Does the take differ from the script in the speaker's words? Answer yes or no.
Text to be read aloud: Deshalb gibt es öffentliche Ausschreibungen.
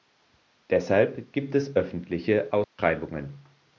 no